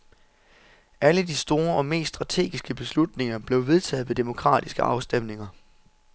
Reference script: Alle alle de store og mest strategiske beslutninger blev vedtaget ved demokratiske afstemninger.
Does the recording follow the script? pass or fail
fail